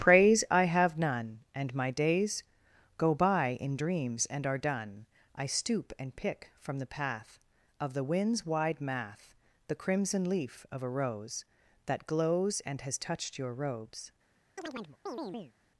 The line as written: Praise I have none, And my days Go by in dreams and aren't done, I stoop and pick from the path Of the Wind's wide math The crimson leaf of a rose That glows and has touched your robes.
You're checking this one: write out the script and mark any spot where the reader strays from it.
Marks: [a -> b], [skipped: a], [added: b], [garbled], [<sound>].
Praise I have none, And my days Go by in dreams and [aren't -> are] done, I stoop and pick from the path Of the Wind's wide math The crimson leaf of a rose That glows and has touched your robes. [chirp]